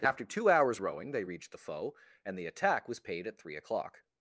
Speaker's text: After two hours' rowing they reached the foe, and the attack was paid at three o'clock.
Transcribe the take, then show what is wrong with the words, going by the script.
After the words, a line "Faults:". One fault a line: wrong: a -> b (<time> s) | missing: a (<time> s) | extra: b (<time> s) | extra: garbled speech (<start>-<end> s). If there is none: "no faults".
After two hours' rowing they reached the foe, and the attack was paid at three o'clock.
Faults:
no faults